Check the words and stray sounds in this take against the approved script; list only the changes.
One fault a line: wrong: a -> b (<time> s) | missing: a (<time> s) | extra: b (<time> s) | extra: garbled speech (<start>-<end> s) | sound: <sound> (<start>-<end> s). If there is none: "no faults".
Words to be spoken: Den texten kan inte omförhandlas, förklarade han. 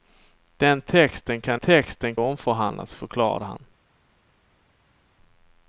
wrong: inte -> texten (1.6 s)